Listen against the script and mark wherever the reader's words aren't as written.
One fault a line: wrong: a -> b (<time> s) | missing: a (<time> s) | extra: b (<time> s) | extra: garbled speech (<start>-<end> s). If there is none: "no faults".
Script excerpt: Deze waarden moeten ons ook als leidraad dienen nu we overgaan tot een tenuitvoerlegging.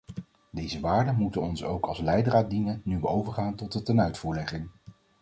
wrong: een -> de (3.7 s)